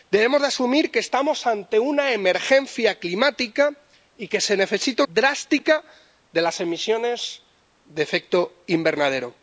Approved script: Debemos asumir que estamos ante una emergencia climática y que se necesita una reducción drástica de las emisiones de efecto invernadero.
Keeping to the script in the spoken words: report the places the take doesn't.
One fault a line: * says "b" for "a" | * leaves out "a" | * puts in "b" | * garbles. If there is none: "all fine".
* leaves out "una reducción"